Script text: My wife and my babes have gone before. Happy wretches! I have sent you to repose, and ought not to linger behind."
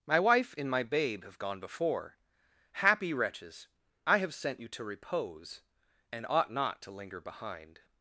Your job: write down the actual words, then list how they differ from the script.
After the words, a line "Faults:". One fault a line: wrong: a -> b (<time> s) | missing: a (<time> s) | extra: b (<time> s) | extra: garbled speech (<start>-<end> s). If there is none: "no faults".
My wife and my babe have gone before. Happy wretches! I have sent you to repose, and ought not to linger behind."
Faults:
wrong: babes -> babe (0.8 s)